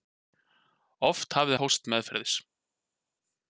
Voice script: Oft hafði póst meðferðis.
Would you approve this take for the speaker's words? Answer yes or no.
yes